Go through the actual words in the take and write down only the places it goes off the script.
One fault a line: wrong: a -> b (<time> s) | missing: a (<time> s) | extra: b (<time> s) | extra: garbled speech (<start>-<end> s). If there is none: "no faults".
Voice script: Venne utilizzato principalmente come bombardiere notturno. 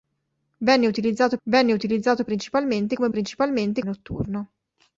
extra: venne utilizzato (1.4 s)
wrong: bombardiere -> principalmente (3.1 s)